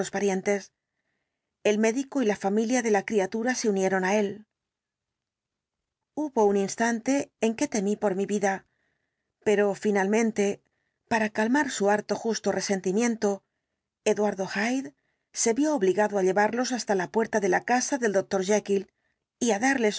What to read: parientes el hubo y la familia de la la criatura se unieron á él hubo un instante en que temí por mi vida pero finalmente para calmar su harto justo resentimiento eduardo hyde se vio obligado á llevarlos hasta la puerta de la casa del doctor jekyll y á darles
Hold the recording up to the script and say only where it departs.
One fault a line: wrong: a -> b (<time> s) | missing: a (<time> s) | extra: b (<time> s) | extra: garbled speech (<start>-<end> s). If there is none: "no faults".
wrong: hubo -> médico (1.8 s)
missing: la (3.0 s)